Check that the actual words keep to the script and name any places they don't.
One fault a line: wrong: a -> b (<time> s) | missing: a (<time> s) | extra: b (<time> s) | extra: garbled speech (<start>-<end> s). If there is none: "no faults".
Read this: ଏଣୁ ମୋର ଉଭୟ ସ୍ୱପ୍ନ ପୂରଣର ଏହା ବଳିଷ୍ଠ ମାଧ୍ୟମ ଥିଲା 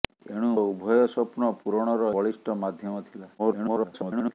missing: ମୋର (0.5 s)
missing: ଏହା (2.1 s)
extra: garbled speech (3.4-4.3 s)